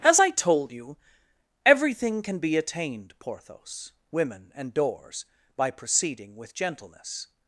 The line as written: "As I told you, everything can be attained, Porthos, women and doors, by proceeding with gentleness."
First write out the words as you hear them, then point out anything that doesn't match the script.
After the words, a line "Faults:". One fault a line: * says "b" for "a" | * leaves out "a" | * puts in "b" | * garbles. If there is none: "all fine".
"As I told you, everything can be attained, Porthos, women and doors, by proceeding with gentleness."
Faults:
all fine